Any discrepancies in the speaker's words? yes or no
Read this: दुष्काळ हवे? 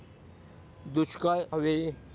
no